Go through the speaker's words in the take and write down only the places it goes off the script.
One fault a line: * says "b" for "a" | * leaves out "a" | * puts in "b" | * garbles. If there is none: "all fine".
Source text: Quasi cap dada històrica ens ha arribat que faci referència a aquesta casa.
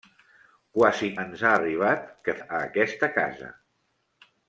* leaves out "cap dada històrica"
* leaves out "faci referència"